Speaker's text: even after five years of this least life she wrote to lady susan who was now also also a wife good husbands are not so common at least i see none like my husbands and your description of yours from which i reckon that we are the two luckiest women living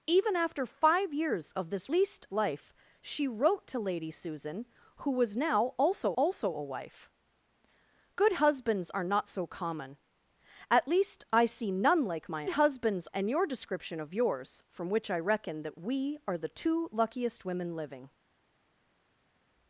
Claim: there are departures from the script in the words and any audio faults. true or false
false